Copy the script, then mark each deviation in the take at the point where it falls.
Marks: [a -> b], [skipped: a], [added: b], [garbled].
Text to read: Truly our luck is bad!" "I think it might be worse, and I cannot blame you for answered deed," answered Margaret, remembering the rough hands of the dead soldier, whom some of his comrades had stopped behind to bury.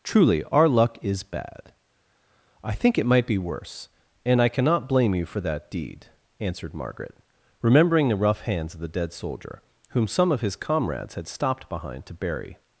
Truly our luck is bad!" "I think it might be worse, and I cannot blame you for [answered -> that] deed," answered Margaret, remembering the rough hands of the dead soldier, whom some of his comrades had stopped behind to bury.